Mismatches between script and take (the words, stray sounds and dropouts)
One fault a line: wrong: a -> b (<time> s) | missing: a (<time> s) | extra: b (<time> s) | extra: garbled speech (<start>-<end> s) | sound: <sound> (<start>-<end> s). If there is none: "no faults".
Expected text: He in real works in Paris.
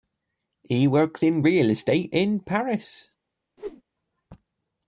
extra: works (0.9 s)
wrong: works -> estate (1.7 s)
sound: whoosh (3.6-3.8 s)